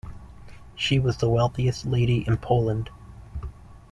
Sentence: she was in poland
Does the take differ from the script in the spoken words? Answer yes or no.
yes